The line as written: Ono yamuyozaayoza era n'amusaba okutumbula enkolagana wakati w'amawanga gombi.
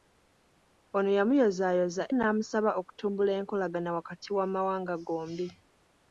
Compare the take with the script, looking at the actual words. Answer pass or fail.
fail